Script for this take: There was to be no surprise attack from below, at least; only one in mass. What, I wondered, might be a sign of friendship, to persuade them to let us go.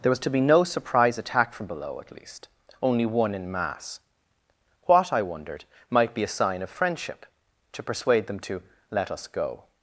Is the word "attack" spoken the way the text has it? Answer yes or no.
yes